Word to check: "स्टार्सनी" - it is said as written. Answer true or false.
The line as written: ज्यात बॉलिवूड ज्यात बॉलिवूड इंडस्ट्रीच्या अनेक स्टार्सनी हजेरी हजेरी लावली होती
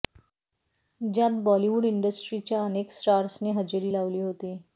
true